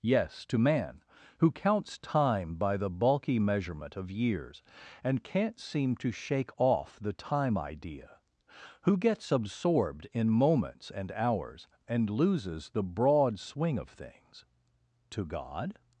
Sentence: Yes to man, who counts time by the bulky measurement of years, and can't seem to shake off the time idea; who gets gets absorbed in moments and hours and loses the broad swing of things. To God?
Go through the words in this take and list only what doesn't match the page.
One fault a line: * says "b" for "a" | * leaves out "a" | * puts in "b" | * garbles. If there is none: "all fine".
* leaves out "gets"